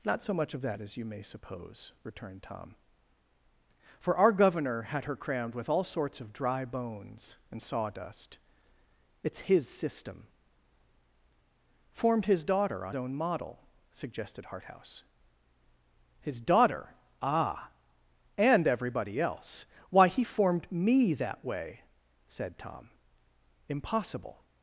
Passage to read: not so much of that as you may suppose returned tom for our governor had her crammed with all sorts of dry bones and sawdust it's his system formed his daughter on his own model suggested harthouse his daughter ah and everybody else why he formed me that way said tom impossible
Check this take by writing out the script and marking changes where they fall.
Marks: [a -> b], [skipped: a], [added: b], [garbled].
not so much of that as you may suppose returned tom for our governor had her crammed with all sorts of dry bones and sawdust it's his system formed his daughter on [skipped: his] own model suggested harthouse his daughter ah and everybody else why he formed me that way said tom impossible